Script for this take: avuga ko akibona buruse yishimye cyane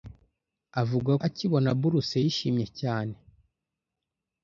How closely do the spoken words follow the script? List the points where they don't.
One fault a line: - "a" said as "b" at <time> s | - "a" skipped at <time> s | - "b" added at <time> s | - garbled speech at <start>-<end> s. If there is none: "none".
- "ko" skipped at 1.1 s